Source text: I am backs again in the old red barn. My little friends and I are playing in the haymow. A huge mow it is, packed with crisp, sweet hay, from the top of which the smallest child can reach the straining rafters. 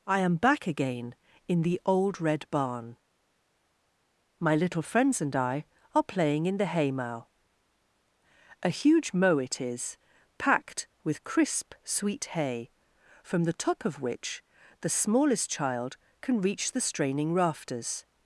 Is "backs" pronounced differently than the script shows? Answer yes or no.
yes